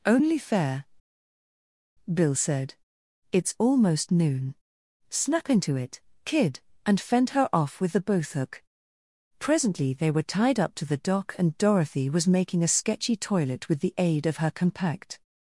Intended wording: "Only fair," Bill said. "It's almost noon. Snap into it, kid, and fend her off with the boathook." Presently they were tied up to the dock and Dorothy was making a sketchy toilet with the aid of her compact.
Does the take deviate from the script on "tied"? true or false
false